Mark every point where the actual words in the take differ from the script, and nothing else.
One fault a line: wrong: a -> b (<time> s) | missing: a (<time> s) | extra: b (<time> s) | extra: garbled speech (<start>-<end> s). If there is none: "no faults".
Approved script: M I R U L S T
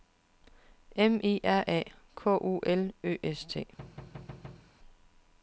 extra: A K (1.7 s)
extra: Ø (3.0 s)